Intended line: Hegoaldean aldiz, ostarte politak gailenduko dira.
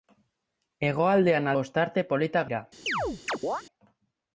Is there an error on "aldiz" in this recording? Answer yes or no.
yes